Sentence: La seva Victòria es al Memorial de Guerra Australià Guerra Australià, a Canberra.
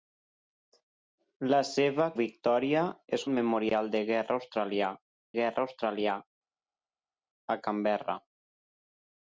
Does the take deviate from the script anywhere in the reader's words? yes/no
no